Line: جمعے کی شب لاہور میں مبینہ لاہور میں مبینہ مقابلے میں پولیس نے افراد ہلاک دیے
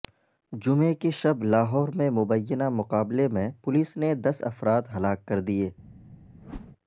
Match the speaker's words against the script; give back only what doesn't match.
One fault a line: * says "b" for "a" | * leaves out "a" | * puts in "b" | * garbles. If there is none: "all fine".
* leaves out "لاہور میں مبینہ"
* puts in "دس"
* puts in "کر"